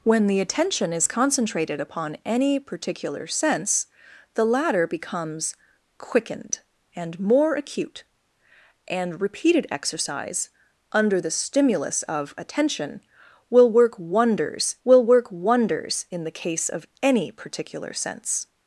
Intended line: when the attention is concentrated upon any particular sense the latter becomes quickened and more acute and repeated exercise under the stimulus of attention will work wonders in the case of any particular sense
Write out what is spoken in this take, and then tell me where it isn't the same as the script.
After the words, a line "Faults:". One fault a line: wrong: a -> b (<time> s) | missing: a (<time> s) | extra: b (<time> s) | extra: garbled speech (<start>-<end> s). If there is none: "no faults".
when the attention is concentrated upon any particular sense the latter becomes quickened and more acute and repeated exercise under the stimulus of attention will work wonders will work wonders in the case of any particular sense
Faults:
extra: will work wonders (14.9 s)